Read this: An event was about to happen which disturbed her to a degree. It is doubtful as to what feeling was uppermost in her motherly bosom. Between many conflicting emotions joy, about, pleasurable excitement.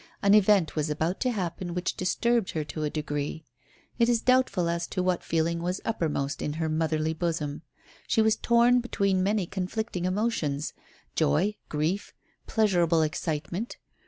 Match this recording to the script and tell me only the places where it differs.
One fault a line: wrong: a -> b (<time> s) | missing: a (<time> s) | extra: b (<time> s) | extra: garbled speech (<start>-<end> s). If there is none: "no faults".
extra: She was torn (8.1 s)
wrong: about -> grief (11.7 s)